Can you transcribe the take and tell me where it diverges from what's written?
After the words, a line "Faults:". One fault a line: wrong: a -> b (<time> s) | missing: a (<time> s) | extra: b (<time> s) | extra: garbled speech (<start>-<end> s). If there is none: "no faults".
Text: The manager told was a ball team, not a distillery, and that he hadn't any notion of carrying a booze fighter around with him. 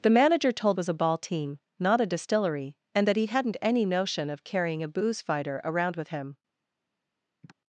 The manager told was a ball team, not a distillery, and that he hadn't any notion of carrying a booze fighter around with him.
Faults:
no faults